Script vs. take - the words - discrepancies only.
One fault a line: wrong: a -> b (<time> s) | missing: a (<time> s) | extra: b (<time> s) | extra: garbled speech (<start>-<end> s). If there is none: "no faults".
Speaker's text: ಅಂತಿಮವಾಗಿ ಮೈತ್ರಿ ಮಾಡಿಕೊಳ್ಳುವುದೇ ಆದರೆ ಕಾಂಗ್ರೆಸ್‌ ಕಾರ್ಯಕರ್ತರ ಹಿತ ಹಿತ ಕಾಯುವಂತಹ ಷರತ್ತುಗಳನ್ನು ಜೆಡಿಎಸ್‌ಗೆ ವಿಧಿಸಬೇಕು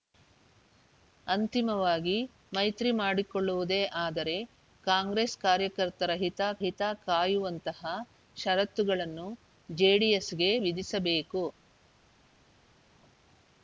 no faults